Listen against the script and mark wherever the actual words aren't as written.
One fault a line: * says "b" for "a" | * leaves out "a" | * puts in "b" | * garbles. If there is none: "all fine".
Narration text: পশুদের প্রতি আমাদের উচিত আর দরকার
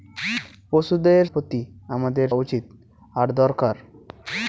all fine